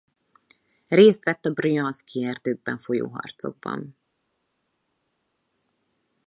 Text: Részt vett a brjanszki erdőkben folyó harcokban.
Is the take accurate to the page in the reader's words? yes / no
yes